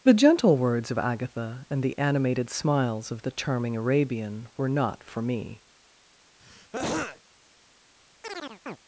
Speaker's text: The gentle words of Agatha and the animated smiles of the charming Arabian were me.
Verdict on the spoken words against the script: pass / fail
fail